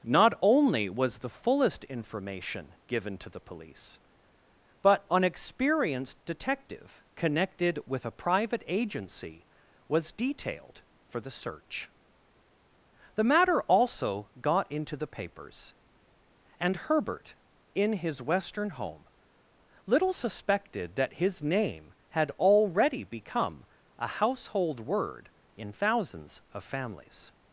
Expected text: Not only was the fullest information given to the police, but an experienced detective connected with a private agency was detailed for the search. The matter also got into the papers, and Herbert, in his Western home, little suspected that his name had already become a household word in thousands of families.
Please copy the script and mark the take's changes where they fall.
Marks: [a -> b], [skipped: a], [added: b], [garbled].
Not only was the fullest information given to the police, but an experienced detective connected with a private agency was detailed for the search. The matter also got into the papers, and Herbert, in his Western home, little suspected that his name had already become a household word in thousands of families.